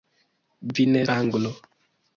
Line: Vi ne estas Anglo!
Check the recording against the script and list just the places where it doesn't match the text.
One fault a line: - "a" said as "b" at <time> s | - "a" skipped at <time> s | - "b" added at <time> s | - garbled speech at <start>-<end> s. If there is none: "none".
- "estas" skipped at 1.0 s